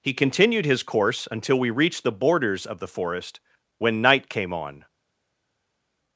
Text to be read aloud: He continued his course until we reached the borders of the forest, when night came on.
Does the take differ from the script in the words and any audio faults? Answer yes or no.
no